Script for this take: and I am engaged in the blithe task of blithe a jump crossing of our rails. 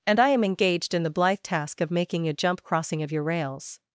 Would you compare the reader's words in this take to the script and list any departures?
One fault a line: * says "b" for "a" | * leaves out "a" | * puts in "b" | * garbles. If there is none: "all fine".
* says "making" for "blithe"
* says "your" for "our"